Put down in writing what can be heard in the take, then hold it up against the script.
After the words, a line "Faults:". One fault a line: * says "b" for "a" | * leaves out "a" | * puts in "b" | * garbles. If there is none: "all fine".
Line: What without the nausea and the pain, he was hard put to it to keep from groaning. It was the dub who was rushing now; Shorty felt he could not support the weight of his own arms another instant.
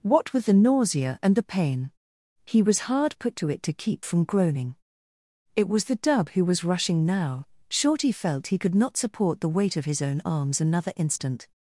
What with the nausea and the pain, he was hard put to it to keep from groaning. It was the dub who was rushing now; Shorty felt he could not support the weight of his own arms another instant.
Faults:
* says "with" for "without"